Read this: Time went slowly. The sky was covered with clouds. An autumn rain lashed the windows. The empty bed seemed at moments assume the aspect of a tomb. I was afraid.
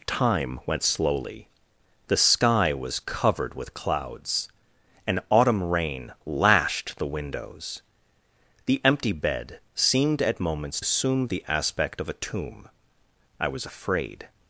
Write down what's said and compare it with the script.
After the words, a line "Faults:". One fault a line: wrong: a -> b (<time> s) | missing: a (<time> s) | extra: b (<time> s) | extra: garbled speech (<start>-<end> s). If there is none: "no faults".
Time went slowly. The sky was covered with clouds. An autumn rain lashed the windows. The empty bed seemed at moments assume the aspect of a tomb. I was afraid.
Faults:
no faults